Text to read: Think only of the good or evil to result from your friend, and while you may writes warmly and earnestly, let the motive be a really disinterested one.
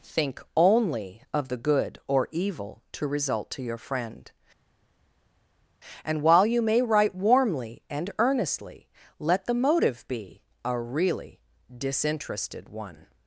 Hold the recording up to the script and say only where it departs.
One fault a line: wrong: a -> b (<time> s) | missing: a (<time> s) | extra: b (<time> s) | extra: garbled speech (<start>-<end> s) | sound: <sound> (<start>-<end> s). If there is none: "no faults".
wrong: from -> to (3.5 s)
wrong: writes -> write (6.8 s)